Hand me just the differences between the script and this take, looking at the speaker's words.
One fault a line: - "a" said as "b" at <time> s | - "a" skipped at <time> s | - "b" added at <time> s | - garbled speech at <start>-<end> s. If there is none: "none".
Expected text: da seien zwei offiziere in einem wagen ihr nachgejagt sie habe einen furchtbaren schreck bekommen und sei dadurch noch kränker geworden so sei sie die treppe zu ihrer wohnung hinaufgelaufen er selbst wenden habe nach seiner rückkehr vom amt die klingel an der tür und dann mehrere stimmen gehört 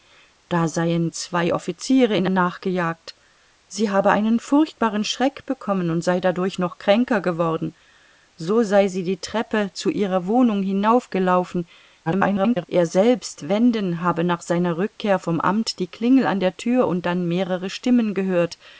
- "einem wagen ihr" skipped at 2.3 s
- garbled speech at 12.1-12.7 s